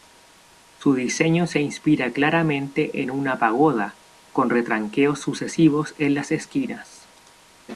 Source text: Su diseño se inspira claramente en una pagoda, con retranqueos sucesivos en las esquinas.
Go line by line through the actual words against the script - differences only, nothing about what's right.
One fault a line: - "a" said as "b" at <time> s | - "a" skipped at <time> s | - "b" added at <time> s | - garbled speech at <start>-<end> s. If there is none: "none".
none